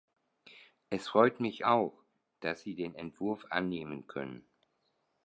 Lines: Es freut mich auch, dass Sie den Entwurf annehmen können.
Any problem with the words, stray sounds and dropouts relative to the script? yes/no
no